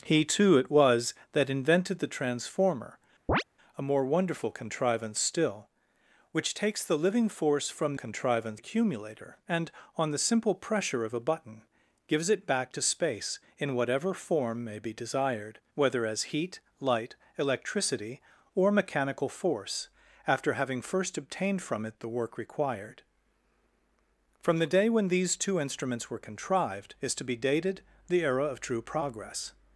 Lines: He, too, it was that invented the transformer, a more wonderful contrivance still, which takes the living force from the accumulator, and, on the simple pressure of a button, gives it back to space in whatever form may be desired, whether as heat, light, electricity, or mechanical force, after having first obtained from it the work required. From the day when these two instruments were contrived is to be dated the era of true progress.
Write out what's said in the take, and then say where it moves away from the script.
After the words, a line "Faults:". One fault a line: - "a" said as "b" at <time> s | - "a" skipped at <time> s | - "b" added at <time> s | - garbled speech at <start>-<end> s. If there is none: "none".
He, too, it was that invented the transformer, a more wonderful contrivance still, which takes the living force from contrivance accumulator, and, on the simple pressure of a button, gives it back to space in whatever form may be desired, whether as heat, light, electricity, or mechanical force, after having first obtained from it the work required. From the day when these two instruments were contrived is to be dated the era of true progress.
Faults:
- "the" said as "contrivance" at 7.9 s